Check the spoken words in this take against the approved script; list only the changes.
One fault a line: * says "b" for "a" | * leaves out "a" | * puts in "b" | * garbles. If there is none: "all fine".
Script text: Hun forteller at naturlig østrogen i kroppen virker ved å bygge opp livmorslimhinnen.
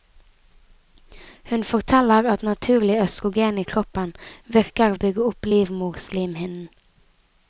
* leaves out "ved"